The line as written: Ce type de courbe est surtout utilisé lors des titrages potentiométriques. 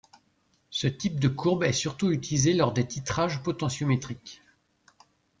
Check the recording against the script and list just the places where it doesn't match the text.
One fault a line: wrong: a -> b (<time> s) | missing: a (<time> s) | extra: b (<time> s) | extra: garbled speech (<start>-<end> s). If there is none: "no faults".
no faults